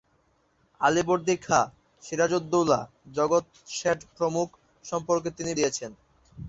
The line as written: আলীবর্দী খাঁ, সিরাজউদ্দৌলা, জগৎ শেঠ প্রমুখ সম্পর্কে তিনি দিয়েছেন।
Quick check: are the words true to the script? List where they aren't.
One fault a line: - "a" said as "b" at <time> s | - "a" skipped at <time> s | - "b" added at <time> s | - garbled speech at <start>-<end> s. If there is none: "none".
none